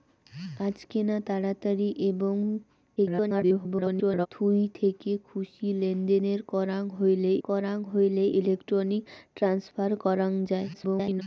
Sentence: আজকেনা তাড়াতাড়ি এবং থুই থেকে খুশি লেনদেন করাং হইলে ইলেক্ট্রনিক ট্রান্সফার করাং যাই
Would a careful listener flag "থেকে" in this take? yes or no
no